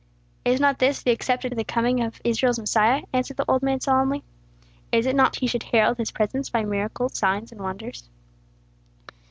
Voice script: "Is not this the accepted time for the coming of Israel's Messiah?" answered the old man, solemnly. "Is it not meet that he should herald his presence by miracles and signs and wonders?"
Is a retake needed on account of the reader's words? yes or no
yes